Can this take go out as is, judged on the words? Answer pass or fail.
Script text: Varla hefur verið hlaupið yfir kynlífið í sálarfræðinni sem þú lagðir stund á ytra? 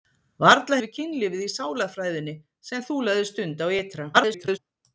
fail